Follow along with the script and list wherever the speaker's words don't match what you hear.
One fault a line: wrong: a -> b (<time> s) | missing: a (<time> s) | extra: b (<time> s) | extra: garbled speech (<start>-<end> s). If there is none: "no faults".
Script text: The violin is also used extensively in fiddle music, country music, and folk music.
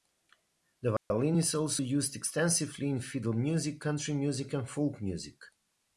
no faults